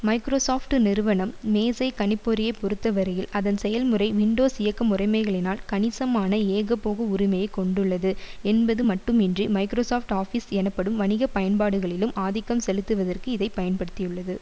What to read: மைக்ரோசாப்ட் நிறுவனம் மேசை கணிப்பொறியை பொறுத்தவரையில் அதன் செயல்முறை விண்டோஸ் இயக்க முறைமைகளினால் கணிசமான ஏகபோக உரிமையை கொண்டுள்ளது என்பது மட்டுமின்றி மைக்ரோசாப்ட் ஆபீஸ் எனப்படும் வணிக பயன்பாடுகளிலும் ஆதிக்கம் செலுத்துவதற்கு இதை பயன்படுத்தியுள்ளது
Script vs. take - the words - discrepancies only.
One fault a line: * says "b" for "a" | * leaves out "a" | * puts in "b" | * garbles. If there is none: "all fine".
all fine